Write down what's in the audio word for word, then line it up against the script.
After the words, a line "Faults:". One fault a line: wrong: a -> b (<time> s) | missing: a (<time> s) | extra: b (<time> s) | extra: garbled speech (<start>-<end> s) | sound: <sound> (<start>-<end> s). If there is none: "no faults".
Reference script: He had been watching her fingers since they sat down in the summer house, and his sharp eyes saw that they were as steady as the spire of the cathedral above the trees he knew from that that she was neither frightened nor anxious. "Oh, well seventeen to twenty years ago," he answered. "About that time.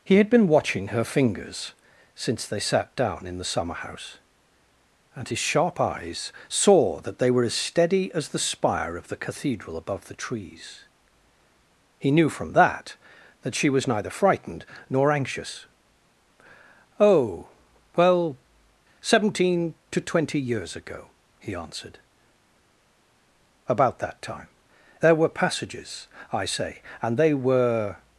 He had been watching her fingers since they sat down in the summer house, and his sharp eyes saw that they were as steady as the spire of the cathedral above the trees he knew from that that she was neither frightened nor anxious. "Oh, well seventeen to twenty years ago," he answered. "About that time. There were passages, I say, and they were
Faults:
extra: There were passages I say and they were (25.0 s)